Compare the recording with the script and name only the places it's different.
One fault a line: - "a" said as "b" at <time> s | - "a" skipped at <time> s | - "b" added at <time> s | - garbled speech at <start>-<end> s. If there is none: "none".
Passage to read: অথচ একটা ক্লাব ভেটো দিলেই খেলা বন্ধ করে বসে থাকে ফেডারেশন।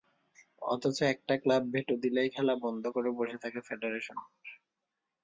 none